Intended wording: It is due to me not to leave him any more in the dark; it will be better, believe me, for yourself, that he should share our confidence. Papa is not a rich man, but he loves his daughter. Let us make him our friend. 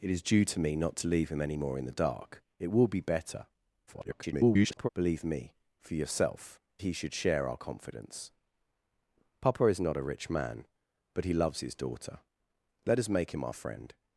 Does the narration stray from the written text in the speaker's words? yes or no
yes